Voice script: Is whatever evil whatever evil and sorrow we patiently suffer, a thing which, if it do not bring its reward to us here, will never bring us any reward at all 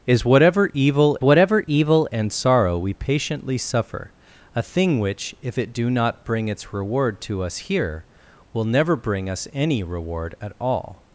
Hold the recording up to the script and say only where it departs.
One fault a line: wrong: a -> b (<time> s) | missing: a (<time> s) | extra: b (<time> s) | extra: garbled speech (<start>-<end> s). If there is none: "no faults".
no faults